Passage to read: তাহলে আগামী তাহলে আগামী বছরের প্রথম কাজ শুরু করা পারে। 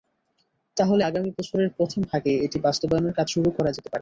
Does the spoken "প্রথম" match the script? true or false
false